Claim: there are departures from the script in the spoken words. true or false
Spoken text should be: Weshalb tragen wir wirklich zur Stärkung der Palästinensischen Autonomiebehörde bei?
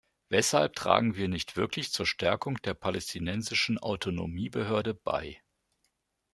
true